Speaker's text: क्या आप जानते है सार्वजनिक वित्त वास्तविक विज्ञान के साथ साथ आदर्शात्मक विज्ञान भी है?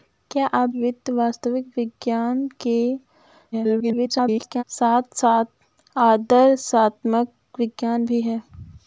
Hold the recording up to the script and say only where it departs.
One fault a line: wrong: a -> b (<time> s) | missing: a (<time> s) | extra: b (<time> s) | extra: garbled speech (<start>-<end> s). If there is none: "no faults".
missing: जानते है सार्वजनिक (0.7 s)
extra: garbled speech (3.5-4.6 s)